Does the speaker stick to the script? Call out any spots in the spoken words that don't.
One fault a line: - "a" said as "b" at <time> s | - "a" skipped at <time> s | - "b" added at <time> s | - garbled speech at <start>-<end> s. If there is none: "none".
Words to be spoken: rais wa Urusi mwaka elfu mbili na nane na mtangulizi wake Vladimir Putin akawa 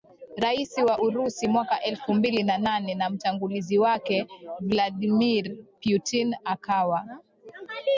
none